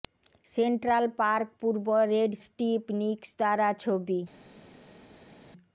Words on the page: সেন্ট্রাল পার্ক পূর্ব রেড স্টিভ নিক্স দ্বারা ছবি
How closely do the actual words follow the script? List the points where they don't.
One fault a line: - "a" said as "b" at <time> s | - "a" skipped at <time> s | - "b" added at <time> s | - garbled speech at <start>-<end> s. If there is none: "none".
none